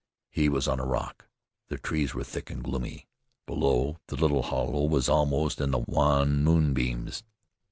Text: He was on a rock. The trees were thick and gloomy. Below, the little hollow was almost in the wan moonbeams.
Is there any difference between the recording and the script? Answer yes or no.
no